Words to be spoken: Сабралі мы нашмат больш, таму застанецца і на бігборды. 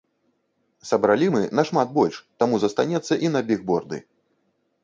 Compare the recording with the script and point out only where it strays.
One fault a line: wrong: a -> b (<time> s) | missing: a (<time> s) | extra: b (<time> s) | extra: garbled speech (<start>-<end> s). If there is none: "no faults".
no faults